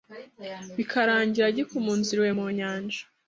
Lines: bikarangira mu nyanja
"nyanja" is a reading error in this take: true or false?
false